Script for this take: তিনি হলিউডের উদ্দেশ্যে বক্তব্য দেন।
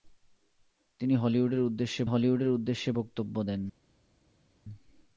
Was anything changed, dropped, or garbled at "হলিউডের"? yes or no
no